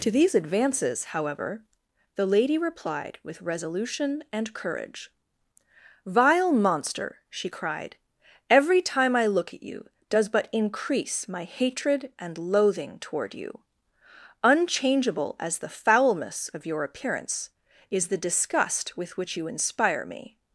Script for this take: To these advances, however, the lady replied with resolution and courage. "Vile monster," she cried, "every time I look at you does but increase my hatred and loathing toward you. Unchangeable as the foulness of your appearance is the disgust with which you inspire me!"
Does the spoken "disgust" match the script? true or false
true